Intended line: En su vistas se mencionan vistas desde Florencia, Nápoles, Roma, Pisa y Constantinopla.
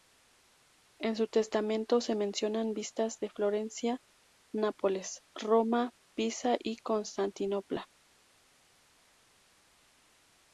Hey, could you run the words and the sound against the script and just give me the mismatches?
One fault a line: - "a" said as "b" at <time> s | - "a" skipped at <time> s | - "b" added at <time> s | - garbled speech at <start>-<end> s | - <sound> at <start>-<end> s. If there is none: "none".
- "vistas" said as "testamento" at 1.3 s
- "desde" said as "de" at 3.2 s